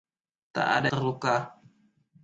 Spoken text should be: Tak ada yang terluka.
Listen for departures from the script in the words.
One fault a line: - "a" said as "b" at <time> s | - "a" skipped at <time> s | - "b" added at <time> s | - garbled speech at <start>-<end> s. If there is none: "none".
- "yang" skipped at 0.9 s